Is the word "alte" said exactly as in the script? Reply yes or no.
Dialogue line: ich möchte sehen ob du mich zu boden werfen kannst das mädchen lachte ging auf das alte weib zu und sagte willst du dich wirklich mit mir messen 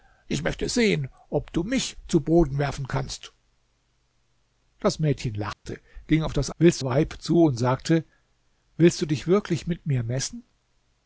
no